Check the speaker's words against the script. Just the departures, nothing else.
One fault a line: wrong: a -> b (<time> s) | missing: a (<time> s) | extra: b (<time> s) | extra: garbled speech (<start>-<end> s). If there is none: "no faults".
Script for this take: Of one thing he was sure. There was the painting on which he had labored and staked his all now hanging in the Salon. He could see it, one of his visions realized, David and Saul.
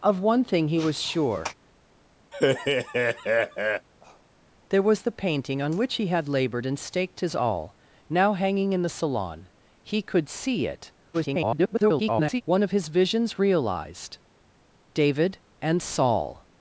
extra: garbled speech (11.1-12.4 s)